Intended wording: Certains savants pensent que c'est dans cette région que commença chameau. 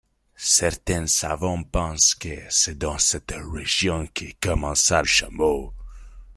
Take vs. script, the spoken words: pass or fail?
pass